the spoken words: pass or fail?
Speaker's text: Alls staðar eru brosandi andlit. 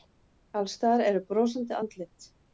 pass